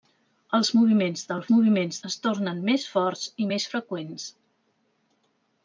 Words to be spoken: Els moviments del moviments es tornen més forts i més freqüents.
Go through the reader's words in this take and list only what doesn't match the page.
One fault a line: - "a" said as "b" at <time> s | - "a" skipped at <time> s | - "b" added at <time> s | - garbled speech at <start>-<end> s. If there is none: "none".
none